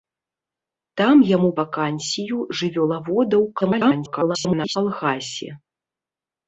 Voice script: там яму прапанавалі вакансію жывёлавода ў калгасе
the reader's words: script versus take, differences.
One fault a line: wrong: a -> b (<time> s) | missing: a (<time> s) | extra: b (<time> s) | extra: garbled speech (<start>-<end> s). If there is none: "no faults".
missing: прапанавалі (1.5 s)
extra: garbled speech (3.6-4.8 s)